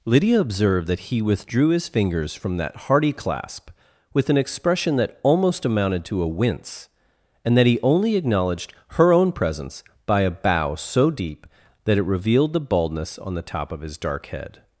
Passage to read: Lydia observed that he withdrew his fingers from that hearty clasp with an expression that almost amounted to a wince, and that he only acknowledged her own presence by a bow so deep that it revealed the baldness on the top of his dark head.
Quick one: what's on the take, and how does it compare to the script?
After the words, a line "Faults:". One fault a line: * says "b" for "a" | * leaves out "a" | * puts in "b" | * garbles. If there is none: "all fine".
Lydia observed that he withdrew his fingers from that hearty clasp with an expression that almost amounted to a wince, and that he only acknowledged her own presence by a bow so deep that it revealed the baldness on the top of his dark head.
Faults:
all fine